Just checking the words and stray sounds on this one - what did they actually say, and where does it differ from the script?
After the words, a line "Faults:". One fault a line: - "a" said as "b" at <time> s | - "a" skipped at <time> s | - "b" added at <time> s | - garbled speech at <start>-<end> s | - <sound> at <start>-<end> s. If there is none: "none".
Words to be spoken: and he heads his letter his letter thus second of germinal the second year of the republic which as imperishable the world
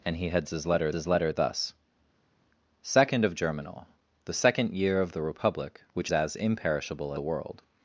and he heads his letter his letter thus second of germinal the second year of the republic which as imperishable the world
Faults:
none